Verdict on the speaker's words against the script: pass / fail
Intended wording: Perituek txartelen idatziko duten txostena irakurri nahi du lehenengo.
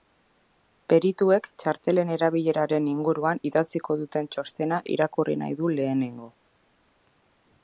fail